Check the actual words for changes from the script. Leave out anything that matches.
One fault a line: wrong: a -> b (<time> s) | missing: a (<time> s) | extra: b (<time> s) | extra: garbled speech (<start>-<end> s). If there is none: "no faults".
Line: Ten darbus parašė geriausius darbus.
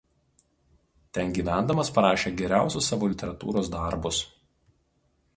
wrong: darbus -> gyvendamas (1.4 s)
extra: savo literatūros (2.9 s)